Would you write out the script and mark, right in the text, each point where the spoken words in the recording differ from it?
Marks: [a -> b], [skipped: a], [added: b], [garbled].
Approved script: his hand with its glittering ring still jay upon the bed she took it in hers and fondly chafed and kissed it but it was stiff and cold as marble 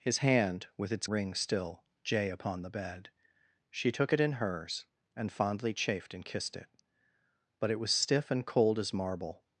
his hand with its [skipped: glittering] ring still jay upon the bed she took it in hers and fondly chafed and kissed it but it was stiff and cold as marble